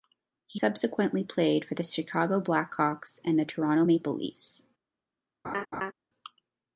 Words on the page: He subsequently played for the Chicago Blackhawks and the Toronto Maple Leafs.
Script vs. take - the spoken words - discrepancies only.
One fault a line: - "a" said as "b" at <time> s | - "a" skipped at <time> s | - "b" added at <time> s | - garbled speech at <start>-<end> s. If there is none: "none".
none